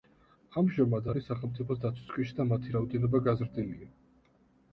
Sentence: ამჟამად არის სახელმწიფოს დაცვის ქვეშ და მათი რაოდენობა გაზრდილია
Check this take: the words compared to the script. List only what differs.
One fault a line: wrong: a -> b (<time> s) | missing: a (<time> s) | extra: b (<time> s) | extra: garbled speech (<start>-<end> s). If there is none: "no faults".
no faults